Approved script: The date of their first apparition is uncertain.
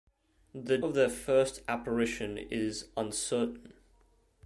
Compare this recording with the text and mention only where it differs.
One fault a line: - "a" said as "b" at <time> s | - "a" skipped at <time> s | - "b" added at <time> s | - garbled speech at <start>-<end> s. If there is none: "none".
- "date" skipped at 0.8 s